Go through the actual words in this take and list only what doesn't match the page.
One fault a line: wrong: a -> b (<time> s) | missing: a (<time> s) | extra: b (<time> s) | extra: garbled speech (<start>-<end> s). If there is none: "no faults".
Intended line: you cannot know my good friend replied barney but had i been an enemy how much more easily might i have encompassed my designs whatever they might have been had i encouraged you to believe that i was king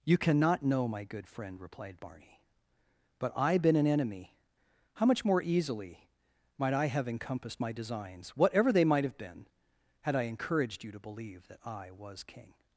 missing: had (3.3 s)